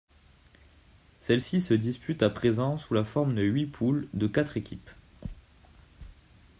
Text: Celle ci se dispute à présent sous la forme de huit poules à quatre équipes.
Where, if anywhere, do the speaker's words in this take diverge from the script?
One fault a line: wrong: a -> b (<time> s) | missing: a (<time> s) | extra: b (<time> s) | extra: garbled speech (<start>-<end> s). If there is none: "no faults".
wrong: à -> de (4.1 s)